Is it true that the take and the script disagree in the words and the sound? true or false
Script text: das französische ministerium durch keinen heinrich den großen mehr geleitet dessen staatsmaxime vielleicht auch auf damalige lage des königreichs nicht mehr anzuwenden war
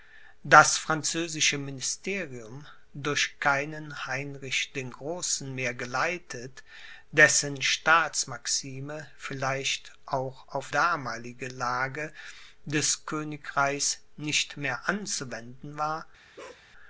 true